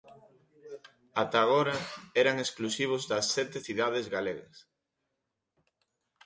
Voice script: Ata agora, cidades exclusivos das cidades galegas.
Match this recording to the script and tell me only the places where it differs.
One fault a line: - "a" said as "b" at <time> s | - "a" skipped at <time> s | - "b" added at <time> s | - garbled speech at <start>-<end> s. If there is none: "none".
- "cidades" said as "eran" at 2.2 s
- "sete" added at 3.4 s